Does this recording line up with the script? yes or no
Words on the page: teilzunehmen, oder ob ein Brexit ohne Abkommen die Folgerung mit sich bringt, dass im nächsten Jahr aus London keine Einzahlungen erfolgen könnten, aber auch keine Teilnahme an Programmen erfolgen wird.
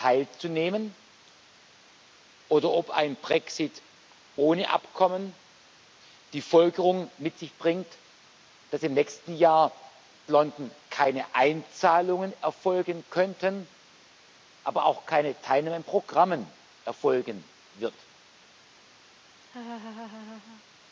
no